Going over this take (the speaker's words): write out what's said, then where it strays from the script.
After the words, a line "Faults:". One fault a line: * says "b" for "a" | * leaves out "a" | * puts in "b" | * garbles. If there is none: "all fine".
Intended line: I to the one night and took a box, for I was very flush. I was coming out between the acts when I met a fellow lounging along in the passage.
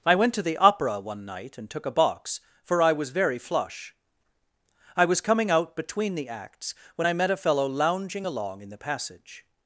I went to the opera one night and took a box, for I was very flush. I was coming out between the acts when I met a fellow lounging along in the passage.
Faults:
* puts in "went"
* puts in "opera"